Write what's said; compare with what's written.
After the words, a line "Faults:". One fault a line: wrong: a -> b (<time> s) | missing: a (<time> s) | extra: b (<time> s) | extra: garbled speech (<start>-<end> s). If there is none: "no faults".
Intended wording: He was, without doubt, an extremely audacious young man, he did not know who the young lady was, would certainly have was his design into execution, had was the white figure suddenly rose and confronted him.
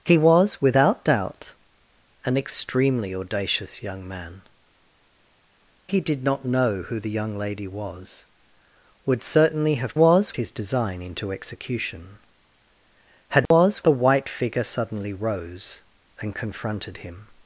He was, without doubt, an extremely audacious young man, he did not know who the young lady was, would certainly have was his design into execution, had was the white figure suddenly rose and confronted him.
Faults:
no faults